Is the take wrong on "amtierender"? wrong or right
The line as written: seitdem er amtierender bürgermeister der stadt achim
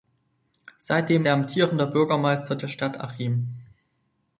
right